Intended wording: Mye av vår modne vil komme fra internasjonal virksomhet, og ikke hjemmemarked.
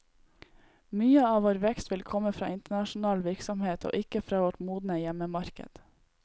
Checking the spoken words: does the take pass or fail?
fail